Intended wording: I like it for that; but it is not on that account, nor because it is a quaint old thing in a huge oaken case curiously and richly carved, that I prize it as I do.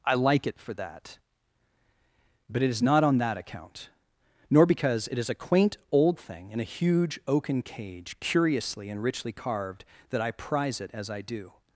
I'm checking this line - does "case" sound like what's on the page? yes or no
no